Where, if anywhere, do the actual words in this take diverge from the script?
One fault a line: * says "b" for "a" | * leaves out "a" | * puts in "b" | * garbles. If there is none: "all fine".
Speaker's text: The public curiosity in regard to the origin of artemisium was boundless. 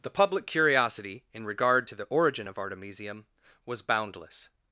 all fine